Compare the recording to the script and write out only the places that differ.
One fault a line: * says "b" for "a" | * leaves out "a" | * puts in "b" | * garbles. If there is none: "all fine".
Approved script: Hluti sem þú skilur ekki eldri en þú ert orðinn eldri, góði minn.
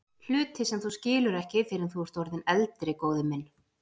* says "fyrr" for "eldri"